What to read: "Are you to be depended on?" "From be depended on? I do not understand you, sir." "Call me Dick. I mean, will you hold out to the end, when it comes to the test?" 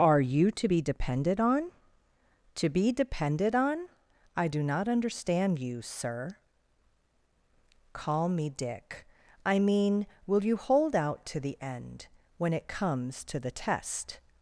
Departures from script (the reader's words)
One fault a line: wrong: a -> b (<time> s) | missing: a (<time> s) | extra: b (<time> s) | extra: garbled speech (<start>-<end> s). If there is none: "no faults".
wrong: From -> To (2.5 s)